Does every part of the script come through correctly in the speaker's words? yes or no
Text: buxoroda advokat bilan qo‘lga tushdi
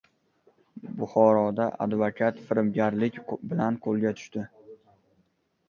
no